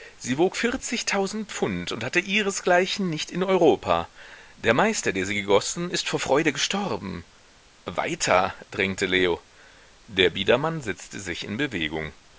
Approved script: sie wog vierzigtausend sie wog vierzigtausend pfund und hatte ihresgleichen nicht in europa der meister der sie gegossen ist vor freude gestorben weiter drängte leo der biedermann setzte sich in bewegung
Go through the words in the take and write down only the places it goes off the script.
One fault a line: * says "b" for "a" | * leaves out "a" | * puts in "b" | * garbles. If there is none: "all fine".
* leaves out "sie wog vierzigtausend"